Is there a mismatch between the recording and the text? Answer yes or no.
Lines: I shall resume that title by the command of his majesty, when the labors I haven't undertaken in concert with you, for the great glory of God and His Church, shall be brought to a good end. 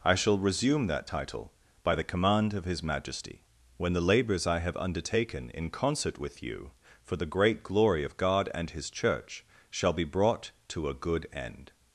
yes